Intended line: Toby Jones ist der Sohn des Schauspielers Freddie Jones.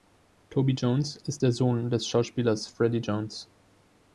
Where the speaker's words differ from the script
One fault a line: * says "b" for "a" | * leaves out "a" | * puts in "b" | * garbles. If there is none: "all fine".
all fine